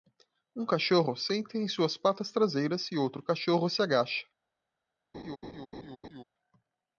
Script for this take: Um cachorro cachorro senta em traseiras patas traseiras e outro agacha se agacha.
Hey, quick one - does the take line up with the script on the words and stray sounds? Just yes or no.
no